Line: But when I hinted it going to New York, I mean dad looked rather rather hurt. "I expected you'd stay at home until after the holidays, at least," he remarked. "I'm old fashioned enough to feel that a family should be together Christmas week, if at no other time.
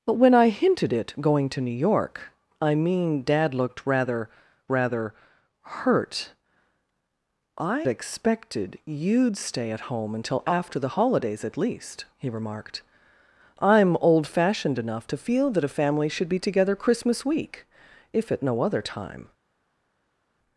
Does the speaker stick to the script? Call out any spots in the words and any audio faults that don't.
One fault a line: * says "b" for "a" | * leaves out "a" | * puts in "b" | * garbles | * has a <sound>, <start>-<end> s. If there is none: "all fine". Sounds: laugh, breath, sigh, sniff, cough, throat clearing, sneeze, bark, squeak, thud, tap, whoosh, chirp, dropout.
all fine